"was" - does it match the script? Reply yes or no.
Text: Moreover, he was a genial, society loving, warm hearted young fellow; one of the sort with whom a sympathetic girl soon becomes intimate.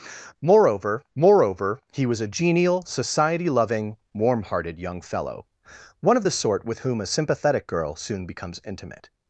yes